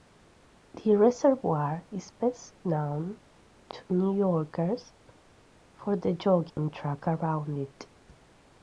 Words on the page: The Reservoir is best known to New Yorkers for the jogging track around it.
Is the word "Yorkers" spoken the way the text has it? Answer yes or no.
yes